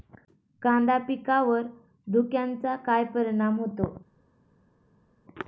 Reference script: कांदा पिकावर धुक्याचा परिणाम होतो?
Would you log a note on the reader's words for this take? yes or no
yes